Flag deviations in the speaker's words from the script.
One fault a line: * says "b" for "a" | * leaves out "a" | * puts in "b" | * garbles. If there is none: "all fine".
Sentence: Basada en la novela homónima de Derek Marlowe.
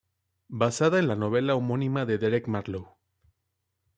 all fine